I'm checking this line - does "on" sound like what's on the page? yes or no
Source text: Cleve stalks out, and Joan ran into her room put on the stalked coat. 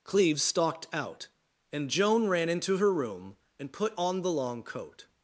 yes